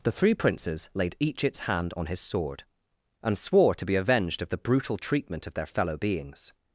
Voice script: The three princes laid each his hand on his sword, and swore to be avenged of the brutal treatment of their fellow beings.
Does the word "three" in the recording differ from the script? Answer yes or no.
no